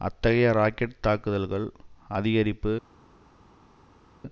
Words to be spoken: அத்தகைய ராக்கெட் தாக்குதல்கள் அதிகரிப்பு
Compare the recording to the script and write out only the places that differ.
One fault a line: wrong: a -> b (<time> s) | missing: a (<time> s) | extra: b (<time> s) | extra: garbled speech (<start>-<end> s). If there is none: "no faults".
no faults